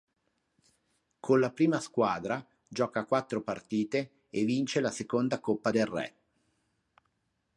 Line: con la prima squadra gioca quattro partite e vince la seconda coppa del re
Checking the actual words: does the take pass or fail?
pass